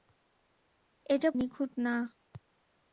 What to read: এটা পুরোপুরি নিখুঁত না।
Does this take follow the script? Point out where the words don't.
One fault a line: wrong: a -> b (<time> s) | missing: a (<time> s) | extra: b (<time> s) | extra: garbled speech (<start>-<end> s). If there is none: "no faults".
missing: পুরোপুরি (1.3 s)